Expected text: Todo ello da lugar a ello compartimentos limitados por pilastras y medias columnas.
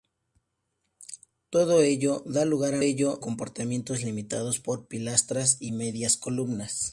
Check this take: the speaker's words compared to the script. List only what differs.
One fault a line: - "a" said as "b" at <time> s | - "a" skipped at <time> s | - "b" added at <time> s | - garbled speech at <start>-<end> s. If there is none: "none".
none